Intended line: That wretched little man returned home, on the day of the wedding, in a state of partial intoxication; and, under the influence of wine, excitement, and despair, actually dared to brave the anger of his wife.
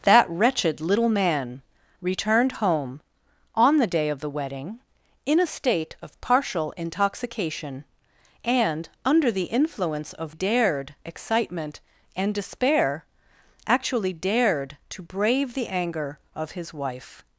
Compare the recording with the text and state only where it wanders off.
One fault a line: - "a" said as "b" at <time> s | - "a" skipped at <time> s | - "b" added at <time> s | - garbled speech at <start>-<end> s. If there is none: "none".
- "wine" said as "dared" at 10.3 s